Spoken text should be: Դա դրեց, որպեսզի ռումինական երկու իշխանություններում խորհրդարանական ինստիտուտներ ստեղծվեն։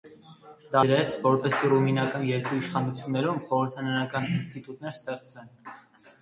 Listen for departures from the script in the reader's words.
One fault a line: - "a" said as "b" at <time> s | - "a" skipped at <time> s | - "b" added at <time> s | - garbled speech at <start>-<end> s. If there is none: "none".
none